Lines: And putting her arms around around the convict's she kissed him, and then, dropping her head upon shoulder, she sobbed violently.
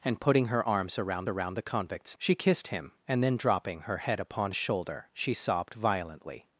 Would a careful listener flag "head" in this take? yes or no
no